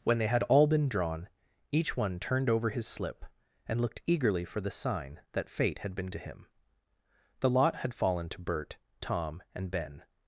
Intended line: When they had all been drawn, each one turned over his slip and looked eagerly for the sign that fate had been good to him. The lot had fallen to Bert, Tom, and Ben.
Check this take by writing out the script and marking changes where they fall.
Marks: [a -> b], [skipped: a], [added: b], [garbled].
When they had all been drawn, each one turned over his slip and looked eagerly for the sign that fate had been [skipped: good] to him. The lot had fallen to Bert, Tom, and Ben.